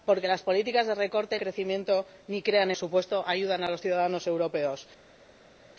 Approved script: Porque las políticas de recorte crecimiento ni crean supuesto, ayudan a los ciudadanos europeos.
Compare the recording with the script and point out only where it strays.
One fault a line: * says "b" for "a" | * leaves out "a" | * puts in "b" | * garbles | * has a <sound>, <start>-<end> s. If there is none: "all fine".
all fine